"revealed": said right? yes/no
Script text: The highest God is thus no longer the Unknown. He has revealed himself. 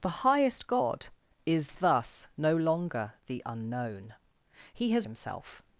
no